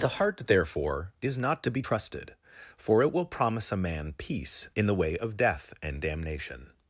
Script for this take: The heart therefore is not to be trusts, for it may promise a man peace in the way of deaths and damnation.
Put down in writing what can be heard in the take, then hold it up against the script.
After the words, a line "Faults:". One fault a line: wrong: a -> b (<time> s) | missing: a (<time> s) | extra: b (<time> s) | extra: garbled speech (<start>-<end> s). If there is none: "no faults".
The heart therefore is not to be trusted, for it will promise a man peace in the way of death and damnation.
Faults:
wrong: trusts -> trusted (1.8 s)
wrong: may -> will (3.1 s)
wrong: deaths -> death (5.4 s)